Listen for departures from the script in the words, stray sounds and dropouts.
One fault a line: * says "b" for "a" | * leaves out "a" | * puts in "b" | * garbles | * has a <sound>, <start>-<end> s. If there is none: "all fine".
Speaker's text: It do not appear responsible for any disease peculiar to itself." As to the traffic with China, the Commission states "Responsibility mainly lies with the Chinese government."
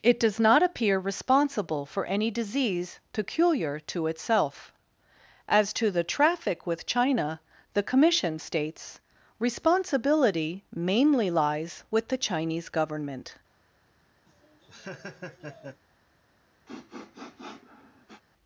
* says "does" for "do"
* has a laugh, 14.3-15.8 s
* has a sniff, 16.7-18.2 s